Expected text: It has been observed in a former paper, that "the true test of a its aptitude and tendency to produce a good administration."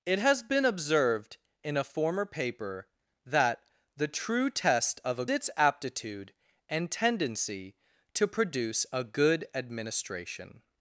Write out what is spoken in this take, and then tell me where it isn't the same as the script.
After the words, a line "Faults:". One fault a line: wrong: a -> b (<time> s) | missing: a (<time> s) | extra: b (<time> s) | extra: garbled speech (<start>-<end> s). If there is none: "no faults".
It has been observed in a former paper, that "the true test of a its aptitude and tendency to produce a good administration."
Faults:
no faults